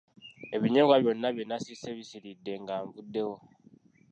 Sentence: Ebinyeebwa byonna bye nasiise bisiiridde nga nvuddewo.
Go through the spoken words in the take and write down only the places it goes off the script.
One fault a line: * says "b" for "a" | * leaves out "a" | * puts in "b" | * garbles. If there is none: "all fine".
all fine